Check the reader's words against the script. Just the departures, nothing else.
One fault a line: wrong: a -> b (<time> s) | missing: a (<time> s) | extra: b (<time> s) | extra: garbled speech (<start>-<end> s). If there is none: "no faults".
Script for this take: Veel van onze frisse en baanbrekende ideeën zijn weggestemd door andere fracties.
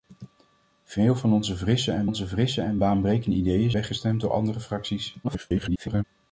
extra: onze frisse en (2.0 s)
missing: zijn (3.7 s)
extra: garbled speech (5.2-6.0 s)